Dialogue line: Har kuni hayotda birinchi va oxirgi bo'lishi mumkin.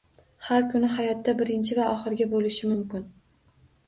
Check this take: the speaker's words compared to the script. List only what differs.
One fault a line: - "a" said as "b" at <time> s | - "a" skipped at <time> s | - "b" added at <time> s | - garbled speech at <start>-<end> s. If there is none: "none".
none